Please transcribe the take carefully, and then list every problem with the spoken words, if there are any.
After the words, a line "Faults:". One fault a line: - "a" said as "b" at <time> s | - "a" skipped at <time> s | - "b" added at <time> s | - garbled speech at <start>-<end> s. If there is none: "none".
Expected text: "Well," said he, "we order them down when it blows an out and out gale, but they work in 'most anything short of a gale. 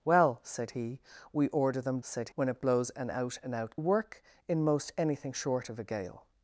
"Well," said he, "we order them said when it blows an out and out work in 'most anything short of a gale.
Faults:
- "down" said as "said" at 2.0 s
- "gale but they" skipped at 3.8 s